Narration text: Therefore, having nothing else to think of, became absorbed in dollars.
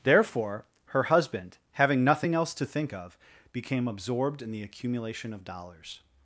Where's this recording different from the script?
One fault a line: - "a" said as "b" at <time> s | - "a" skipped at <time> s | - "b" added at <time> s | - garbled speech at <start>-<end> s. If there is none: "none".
- "her husband" added at 0.8 s
- "the accumulation of" added at 4.5 s